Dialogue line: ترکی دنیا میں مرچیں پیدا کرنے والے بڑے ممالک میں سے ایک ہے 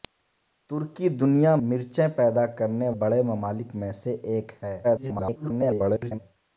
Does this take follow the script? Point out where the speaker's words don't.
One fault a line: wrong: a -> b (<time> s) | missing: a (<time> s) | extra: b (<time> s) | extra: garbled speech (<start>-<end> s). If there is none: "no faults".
missing: میں (1.5 s)
missing: والے (2.9 s)
extra: garbled speech (4.8-6.2 s)